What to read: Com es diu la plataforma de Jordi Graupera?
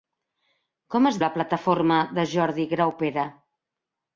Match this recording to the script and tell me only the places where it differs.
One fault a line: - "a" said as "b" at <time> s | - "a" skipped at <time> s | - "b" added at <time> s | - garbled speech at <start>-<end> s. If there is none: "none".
- "diu" skipped at 1.2 s